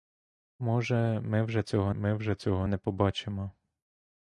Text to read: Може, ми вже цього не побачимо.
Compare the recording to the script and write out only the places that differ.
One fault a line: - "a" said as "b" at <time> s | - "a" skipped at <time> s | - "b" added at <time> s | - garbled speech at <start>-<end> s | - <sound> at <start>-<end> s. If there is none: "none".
- "ми вже цього" added at 1.9 s